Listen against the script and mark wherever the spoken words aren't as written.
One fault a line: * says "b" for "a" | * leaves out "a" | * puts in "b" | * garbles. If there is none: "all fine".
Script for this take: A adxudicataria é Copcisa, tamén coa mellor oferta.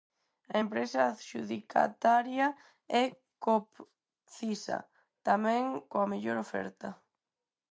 * puts in "empresa"